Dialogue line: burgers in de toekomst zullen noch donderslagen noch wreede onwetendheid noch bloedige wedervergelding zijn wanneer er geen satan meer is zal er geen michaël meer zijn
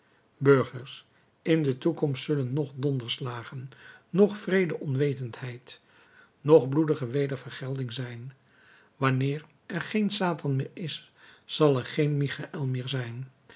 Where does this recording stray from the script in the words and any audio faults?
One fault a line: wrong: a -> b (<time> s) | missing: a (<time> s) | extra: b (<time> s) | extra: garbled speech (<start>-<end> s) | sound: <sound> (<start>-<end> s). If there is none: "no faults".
no faults